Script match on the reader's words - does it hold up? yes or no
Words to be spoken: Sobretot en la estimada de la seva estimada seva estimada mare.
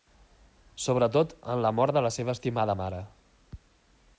no